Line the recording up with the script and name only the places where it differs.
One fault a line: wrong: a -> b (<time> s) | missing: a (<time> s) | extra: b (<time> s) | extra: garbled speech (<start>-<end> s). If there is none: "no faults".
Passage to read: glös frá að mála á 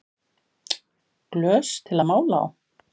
wrong: frá -> til (1.9 s)